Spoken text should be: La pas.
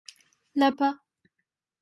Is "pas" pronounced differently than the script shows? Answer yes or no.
no